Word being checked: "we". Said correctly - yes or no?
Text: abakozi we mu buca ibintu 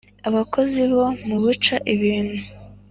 no